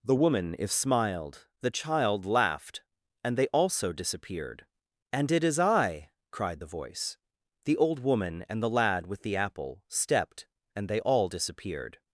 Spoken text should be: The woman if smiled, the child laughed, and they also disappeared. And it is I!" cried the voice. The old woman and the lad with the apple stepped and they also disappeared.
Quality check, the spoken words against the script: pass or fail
fail